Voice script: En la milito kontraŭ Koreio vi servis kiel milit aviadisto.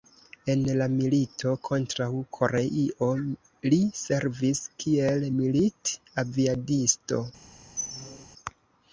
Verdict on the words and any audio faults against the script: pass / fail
fail